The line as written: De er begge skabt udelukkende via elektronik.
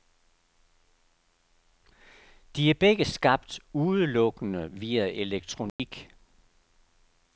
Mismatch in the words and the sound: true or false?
true